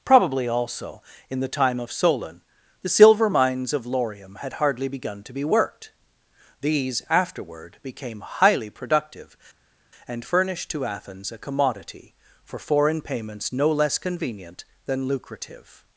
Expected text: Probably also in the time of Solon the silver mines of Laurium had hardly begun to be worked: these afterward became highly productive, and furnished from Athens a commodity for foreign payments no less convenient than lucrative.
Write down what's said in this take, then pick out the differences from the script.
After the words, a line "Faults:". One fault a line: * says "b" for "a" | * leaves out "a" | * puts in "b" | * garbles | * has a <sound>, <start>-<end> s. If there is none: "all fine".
Probably also in the time of Solon the silver mines of Laurium had hardly begun to be worked: these afterward became highly productive, and furnished to Athens a commodity for foreign payments no less convenient than lucrative.
Faults:
* says "to" for "from"